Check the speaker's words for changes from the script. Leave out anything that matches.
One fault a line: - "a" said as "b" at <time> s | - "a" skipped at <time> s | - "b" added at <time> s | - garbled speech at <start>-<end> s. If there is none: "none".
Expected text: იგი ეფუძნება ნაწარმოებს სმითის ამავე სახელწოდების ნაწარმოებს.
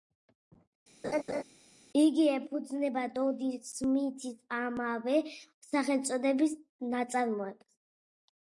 - "ნაწარმოებს" said as "დოდი" at 3.2 s